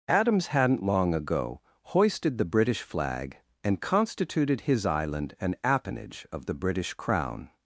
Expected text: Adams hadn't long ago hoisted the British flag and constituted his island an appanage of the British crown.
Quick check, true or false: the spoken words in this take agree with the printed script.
true